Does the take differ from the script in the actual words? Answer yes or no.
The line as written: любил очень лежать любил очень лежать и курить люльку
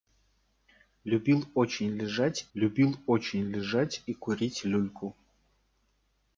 no